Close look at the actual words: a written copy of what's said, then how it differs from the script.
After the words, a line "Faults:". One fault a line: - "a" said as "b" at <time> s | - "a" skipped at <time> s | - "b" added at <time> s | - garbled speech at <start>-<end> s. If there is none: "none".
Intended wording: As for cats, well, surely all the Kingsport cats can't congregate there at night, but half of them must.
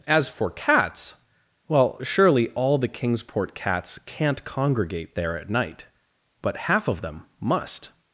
As for cats, well, surely all the Kingsport cats can't congregate there at night, but half of them must.
Faults:
none